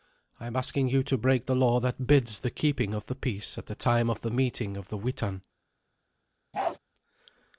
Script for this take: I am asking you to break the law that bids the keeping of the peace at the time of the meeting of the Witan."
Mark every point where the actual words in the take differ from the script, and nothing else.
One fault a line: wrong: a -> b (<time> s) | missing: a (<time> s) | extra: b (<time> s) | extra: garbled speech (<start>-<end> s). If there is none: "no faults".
no faults